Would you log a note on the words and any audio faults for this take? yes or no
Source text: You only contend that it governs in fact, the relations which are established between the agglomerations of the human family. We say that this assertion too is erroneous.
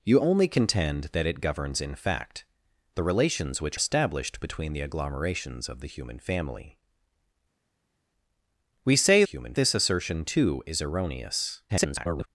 yes